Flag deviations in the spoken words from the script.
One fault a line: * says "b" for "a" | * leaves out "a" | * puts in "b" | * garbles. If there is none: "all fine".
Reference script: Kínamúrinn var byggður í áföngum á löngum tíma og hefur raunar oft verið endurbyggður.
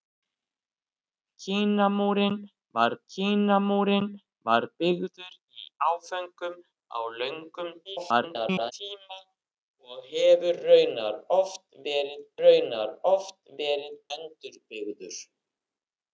* puts in "kínamúrinn var"
* garbles
* puts in "raunar oft verið"